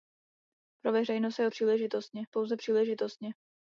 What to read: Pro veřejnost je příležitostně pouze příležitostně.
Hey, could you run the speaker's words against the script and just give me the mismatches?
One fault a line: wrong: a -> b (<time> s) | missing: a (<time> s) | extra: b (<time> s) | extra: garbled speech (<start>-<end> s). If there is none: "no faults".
no faults